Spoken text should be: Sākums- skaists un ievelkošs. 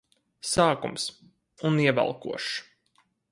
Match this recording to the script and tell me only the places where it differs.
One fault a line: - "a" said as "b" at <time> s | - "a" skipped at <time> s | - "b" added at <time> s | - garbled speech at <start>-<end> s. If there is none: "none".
- "skaists" skipped at 1.1 s